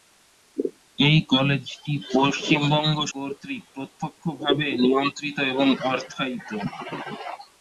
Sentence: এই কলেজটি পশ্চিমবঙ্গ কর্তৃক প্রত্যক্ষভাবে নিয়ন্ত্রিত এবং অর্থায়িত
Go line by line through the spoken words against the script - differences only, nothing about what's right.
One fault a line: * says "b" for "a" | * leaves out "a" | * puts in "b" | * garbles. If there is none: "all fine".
all fine